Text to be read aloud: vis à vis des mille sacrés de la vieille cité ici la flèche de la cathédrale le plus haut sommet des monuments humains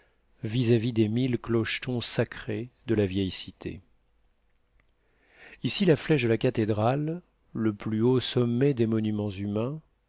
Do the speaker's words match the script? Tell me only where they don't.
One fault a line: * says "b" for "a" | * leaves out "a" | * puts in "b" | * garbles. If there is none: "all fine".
* puts in "clochetons"